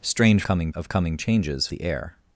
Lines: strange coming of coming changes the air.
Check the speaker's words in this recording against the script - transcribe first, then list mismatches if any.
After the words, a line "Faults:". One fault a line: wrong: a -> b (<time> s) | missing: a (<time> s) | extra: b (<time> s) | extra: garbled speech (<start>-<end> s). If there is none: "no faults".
strange coming of coming changes the air.
Faults:
no faults